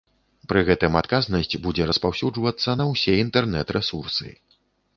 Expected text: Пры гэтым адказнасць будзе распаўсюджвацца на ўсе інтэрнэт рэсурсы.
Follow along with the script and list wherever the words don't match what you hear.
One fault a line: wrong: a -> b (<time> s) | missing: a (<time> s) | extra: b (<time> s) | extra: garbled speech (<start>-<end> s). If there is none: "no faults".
no faults